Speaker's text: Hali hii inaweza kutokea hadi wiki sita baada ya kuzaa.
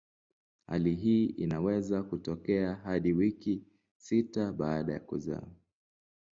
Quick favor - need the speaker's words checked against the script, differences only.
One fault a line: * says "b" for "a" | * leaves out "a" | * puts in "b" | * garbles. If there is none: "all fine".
all fine